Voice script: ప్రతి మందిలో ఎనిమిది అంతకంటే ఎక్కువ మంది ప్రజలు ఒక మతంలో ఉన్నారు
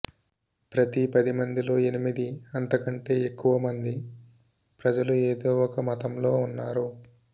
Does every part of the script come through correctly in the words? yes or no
no